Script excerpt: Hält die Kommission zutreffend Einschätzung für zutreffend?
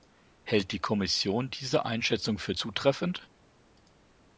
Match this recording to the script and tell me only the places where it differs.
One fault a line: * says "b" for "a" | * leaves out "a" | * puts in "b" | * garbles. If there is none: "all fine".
* says "diese" for "zutreffend"